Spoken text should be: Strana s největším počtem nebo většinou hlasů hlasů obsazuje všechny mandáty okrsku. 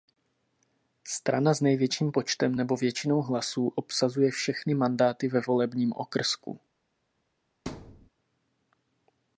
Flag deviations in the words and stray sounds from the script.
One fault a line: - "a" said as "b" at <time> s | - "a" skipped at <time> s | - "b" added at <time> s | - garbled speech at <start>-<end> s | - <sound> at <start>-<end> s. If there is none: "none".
- "hlasů" skipped at 3.7 s
- "ve volebním" added at 5.3 s
- thud at 7.7-8.1 s